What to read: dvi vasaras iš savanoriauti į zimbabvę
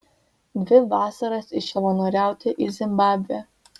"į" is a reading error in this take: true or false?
false